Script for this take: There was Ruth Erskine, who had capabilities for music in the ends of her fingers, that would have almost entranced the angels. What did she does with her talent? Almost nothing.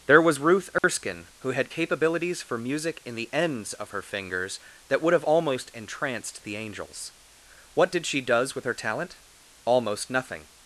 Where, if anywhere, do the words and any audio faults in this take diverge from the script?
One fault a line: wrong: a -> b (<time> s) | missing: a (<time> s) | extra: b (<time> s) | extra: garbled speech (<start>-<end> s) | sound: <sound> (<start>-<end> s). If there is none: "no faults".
sound: dropout (0.8-0.8 s)